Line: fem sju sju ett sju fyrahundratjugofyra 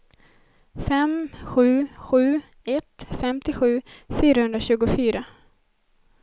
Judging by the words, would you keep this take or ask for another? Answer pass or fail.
fail